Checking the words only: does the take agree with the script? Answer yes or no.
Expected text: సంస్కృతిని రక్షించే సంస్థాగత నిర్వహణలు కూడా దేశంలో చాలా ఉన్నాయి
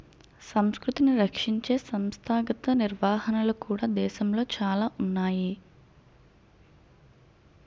yes